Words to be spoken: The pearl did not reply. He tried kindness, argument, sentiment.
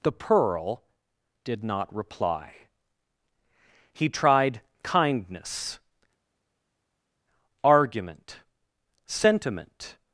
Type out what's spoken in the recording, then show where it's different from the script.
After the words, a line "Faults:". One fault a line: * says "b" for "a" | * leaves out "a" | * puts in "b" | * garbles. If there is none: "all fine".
The pearl did not reply. He tried kindness, argument, sentiment.
Faults:
all fine